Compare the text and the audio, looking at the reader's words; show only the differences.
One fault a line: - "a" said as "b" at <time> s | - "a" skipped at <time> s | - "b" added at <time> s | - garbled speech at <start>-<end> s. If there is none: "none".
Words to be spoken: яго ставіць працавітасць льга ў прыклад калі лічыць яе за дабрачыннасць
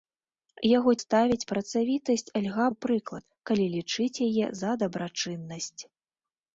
none